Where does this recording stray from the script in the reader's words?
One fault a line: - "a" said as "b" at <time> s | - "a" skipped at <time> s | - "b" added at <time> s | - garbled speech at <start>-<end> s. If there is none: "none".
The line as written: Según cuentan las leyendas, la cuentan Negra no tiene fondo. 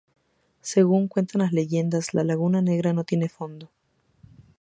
- "cuentan" said as "laguna" at 2.2 s